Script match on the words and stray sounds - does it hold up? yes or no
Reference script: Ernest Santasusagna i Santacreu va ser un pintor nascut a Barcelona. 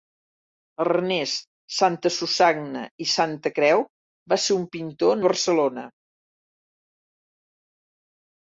no